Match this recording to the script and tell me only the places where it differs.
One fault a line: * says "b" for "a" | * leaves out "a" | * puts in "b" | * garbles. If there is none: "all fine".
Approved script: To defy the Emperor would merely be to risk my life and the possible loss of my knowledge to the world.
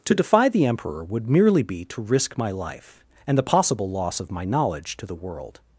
all fine